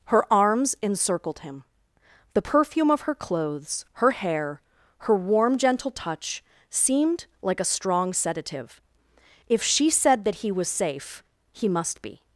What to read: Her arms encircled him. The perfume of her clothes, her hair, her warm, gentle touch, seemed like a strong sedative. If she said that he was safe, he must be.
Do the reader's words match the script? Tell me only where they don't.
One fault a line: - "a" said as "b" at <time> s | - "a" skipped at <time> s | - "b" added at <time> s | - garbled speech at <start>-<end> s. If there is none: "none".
none